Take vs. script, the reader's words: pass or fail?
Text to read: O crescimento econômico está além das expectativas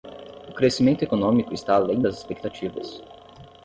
pass